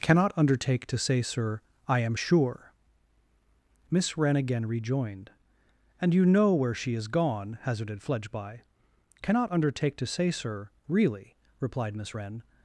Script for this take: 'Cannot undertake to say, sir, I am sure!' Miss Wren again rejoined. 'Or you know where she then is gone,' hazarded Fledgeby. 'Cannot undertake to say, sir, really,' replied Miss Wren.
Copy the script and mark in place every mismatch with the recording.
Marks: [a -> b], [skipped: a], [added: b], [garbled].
'Cannot undertake to say, sir, I am sure!' Miss Wren again rejoined. ['Or -> And] you know where she [skipped: then] is gone,' hazarded Fledgeby. 'Cannot undertake to say, sir, really,' replied Miss Wren.